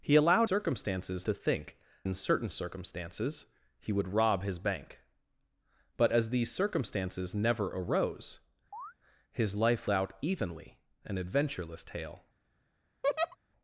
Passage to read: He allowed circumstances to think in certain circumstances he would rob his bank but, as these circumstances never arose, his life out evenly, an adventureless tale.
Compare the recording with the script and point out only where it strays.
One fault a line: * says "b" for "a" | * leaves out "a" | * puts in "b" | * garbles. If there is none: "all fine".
all fine